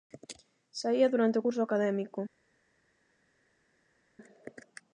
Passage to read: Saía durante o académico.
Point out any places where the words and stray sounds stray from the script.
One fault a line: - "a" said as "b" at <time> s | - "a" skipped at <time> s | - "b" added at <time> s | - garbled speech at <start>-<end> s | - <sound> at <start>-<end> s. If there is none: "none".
- "curso" added at 1.4 s